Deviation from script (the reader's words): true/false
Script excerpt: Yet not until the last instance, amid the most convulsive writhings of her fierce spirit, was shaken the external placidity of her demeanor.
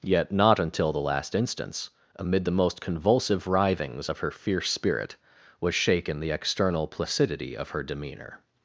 false